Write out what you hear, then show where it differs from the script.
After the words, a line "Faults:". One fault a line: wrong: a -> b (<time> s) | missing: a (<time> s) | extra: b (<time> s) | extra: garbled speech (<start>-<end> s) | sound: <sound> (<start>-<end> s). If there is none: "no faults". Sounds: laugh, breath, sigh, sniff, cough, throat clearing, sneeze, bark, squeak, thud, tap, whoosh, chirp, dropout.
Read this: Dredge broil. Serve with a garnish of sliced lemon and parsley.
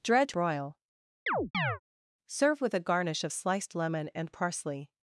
Dredge broil. Serve with a garnish of sliced lemon and parsley.
Faults:
sound: chirp (1.3-1.8 s)